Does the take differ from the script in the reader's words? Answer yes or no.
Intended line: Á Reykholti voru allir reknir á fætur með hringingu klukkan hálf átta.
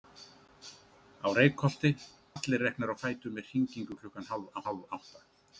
yes